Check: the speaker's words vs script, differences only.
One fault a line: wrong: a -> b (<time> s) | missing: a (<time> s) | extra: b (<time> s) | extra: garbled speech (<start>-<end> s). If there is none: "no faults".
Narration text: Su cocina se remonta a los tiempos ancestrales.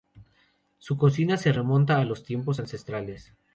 no faults